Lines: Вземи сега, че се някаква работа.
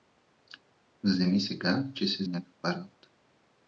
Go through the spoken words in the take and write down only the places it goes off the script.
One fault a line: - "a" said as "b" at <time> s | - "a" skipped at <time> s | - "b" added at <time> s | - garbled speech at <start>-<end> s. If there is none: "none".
none